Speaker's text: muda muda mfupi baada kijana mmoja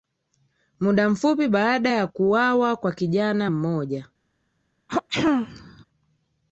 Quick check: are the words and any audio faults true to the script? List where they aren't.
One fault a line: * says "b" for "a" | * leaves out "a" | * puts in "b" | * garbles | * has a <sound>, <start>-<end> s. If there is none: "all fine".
* leaves out "muda"
* puts in "ya kuwawa kwa"
* has a throat clearing, 4.9-5.8 s